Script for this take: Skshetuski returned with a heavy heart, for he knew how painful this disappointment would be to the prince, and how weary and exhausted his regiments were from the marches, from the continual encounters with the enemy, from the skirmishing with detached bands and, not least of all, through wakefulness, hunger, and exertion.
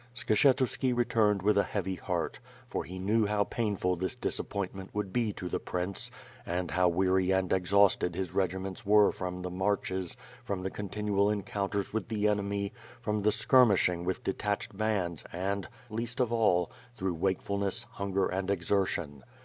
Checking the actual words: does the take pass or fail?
fail